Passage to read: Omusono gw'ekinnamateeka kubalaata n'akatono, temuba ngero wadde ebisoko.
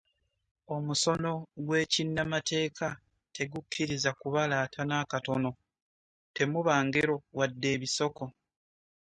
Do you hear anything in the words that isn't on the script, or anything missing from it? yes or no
yes